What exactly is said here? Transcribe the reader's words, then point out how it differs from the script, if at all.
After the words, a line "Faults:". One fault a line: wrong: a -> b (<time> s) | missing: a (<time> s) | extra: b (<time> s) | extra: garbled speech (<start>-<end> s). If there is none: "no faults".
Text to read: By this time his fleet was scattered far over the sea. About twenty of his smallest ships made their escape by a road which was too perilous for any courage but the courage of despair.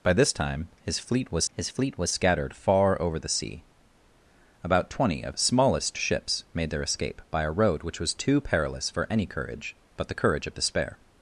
By this time his fleet was his fleet was scattered far over the sea. About twenty of smallest ships made their escape by a road which was too perilous for any courage but the courage of despair.
Faults:
extra: his fleet was (1.5 s)
missing: his (5.4 s)